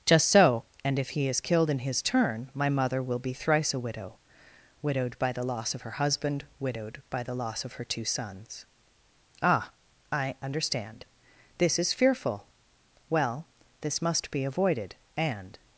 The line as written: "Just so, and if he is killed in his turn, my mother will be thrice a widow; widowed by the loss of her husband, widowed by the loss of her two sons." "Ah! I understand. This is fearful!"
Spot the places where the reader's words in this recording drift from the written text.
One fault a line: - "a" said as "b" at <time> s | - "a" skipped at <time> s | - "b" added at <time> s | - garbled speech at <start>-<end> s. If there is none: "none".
- "Well this must be avoided and" added at 13.1 s